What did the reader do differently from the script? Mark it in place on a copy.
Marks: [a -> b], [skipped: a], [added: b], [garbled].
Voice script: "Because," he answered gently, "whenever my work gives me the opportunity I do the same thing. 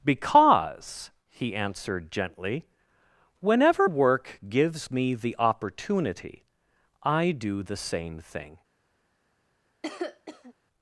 "Because," he answered gently, "whenever [skipped: my] work gives me the opportunity I do the same thing.